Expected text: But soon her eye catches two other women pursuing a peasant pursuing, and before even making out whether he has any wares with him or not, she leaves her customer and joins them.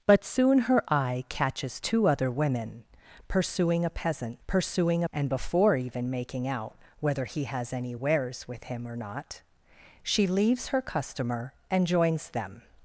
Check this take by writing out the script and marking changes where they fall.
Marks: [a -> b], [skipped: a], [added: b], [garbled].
But soon her eye catches two other women pursuing a peasant pursuing, and before even making out whether he has any wares with him or not, she leaves her customer and joins them.